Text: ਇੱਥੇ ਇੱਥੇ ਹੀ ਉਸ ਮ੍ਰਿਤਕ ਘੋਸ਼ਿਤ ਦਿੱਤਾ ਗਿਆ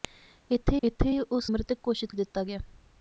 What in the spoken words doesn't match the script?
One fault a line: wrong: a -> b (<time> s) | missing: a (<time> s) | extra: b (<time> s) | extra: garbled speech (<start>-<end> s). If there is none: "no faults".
no faults